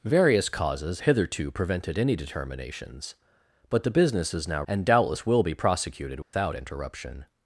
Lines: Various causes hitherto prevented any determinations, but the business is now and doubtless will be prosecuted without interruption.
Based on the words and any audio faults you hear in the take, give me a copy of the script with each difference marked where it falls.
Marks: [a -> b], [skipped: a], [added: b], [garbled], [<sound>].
Various causes hitherto prevented any determinations, but the business is now and doubtless will be prosecuted without [dropout] interruption.